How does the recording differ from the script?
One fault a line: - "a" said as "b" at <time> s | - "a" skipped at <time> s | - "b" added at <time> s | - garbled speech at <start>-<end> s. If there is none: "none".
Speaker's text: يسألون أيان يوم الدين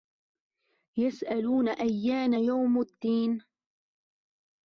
none